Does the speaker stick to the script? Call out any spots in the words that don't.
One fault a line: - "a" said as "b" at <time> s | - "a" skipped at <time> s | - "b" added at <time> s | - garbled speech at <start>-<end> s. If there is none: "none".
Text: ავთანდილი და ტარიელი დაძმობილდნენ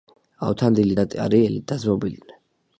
none